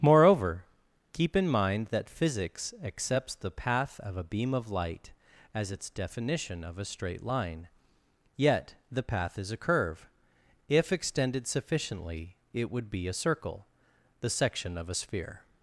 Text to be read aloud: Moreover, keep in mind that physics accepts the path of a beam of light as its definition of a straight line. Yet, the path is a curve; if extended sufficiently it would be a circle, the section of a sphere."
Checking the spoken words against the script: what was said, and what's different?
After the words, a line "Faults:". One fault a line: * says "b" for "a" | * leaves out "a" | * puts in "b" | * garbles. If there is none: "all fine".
Moreover, keep in mind that physics accepts the path of a beam of light as its definition of a straight line. Yet, the path is a curve; if extended sufficiently it would be a circle, the section of a sphere."
Faults:
all fine